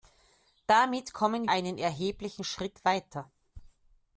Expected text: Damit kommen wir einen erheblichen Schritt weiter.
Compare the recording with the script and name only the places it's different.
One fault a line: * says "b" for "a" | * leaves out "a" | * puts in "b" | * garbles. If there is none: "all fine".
* leaves out "wir"